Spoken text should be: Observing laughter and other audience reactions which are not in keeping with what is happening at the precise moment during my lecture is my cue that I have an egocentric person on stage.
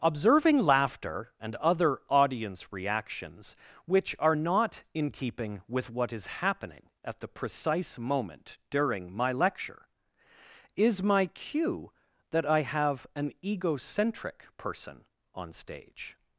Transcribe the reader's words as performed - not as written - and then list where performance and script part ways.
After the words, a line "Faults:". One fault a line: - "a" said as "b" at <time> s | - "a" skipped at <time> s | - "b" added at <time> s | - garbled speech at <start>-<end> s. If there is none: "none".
Observing laughter and other audience reactions which are not in keeping with what is happening at the precise moment during my lecture is my cue that I have an egocentric person on stage.
Faults:
none